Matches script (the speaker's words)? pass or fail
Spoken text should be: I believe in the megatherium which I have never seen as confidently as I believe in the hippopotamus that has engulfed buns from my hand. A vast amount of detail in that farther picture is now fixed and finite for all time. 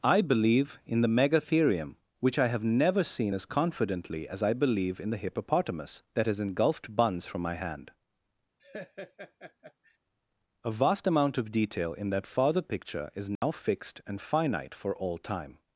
pass